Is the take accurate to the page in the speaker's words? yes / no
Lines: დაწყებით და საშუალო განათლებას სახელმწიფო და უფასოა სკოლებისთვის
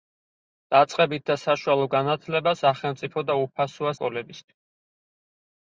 yes